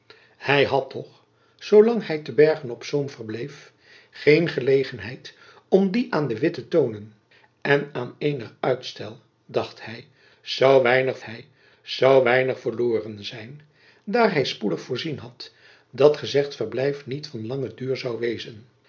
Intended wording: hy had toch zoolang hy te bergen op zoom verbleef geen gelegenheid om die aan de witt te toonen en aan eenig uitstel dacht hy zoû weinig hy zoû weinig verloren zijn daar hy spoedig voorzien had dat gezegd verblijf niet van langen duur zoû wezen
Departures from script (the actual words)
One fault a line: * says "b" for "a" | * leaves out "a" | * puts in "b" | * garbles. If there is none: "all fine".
all fine